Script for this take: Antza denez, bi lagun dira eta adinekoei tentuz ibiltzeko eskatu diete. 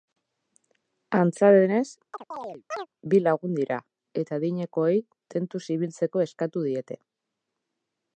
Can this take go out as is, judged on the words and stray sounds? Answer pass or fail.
fail